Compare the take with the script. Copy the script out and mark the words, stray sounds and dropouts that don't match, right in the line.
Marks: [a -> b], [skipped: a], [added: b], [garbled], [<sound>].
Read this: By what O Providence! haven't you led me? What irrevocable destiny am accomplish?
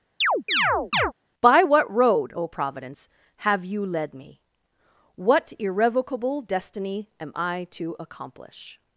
[chirp] By what [added: road] O Providence! [haven't -> have] you led me? What irrevocable destiny am [added: I to] accomplish?